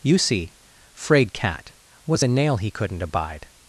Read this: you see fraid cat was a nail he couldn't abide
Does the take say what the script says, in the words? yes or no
yes